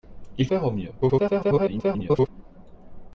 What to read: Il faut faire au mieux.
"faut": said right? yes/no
no